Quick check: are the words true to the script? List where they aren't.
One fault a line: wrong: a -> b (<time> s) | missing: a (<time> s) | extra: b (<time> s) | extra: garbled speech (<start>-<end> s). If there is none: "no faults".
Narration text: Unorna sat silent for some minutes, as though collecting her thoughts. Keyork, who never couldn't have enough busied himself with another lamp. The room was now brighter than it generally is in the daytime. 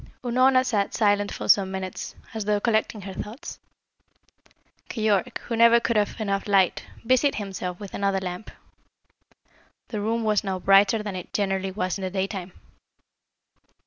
wrong: couldn't -> could (5.8 s)
extra: light (6.5 s)
wrong: is -> was (11.7 s)